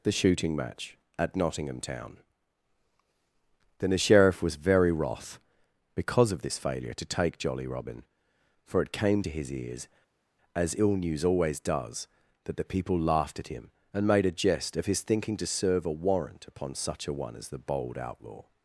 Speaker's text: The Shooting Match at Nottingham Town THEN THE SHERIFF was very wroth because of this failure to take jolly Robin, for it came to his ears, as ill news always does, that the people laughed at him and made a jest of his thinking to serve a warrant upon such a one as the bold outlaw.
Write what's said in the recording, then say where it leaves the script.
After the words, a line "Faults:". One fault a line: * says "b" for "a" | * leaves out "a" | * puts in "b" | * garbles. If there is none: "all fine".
The Shooting Match at Nottingham Town THEN THE SHERIFF was very wroth because of this failure to take jolly Robin, for it came to his ears, as ill news always does, that the people laughed at him and made a jest of his thinking to serve a warrant upon such a one as the bold outlaw.
Faults:
all fine